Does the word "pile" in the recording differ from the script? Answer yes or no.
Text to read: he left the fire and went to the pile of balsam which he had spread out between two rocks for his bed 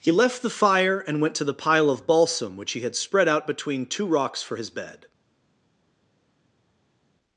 no